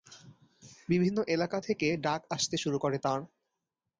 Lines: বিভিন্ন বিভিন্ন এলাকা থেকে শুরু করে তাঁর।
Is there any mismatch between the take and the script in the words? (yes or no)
yes